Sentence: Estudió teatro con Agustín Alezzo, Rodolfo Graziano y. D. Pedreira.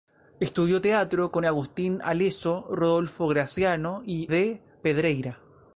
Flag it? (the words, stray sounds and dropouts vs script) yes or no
no